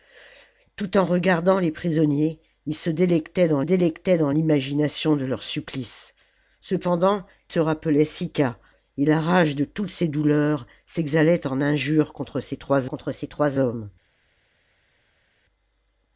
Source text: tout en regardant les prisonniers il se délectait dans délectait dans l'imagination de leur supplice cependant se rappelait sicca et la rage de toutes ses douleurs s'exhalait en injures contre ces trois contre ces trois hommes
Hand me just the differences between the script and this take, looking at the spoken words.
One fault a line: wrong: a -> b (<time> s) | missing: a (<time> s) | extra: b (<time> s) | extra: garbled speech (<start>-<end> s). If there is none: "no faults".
no faults